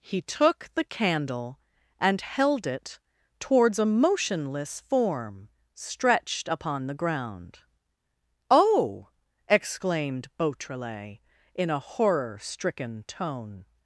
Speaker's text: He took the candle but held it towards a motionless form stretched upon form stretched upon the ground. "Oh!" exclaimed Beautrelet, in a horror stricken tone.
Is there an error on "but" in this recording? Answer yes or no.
yes